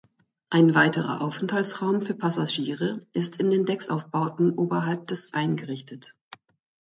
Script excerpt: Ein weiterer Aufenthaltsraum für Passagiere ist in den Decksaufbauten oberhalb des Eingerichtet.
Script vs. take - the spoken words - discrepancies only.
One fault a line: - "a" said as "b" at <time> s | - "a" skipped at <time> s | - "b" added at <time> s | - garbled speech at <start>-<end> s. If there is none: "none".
none